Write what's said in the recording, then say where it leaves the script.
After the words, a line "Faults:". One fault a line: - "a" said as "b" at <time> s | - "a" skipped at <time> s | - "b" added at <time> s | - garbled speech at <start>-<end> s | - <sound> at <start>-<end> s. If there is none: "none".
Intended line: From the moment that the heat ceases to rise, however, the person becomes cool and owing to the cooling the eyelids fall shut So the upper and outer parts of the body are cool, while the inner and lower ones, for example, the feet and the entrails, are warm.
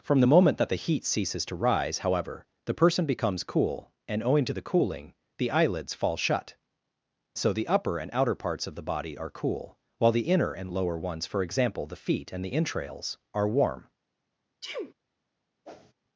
From the moment that the heat ceases to rise, however, the person becomes cool and owing to the cooling the eyelids fall shut So the upper and outer parts of the body are cool, while the inner and lower ones, for example, the feet and the entrails, are warm.
Faults:
- sneeze at 14.6-14.9 s
- whoosh at 15.7-15.9 s